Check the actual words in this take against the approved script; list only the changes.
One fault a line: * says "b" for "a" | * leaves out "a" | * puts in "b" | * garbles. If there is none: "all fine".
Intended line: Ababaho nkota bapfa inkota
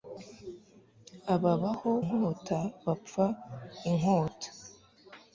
all fine